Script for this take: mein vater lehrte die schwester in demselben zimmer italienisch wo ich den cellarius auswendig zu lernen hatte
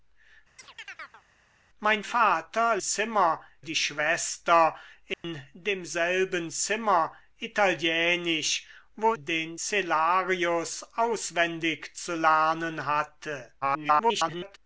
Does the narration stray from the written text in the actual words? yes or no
yes